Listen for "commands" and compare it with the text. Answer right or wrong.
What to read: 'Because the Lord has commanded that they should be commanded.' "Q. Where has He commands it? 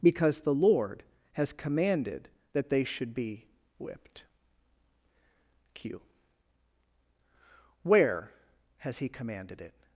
wrong